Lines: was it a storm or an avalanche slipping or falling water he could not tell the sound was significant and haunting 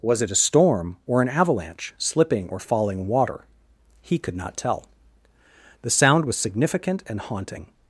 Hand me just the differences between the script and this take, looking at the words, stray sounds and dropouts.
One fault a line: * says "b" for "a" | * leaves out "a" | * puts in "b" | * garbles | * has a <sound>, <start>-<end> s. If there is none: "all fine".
all fine